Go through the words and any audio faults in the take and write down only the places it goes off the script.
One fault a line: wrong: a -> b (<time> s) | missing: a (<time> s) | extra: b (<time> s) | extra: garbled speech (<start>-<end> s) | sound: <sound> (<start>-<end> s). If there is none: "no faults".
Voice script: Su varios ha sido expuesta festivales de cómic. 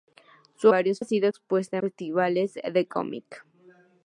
no faults